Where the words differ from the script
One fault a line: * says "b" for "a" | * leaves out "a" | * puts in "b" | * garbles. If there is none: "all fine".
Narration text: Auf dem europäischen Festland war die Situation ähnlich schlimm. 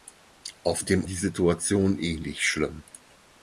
* leaves out "europäischen Festland war"